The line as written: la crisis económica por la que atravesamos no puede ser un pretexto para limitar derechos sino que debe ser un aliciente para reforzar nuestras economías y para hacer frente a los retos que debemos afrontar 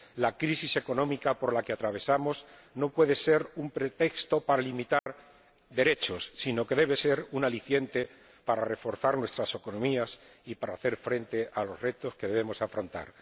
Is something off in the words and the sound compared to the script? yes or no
yes